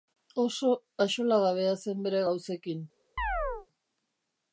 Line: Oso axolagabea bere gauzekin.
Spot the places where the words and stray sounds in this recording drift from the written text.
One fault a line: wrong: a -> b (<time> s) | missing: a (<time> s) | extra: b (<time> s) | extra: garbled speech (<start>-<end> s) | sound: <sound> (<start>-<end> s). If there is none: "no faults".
extra: zen (1.9 s)
sound: chirp (3.2-3.7 s)